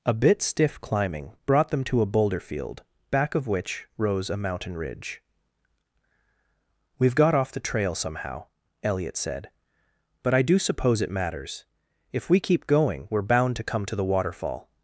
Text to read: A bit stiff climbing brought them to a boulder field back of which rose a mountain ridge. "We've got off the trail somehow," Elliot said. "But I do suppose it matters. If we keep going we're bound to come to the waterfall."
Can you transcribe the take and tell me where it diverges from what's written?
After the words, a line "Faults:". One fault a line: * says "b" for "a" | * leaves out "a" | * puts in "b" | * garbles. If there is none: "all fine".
A bit stiff climbing brought them to a boulder field back of which rose a mountain ridge. "We've got off the trail somehow," Elliot said. "But I do suppose it matters. If we keep going we're bound to come to the waterfall."
Faults:
all fine